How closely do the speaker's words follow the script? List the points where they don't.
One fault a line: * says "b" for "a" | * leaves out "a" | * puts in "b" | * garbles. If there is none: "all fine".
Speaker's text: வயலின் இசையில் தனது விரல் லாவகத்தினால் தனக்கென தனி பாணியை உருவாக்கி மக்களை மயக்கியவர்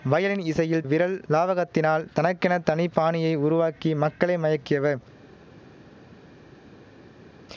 * leaves out "தனது"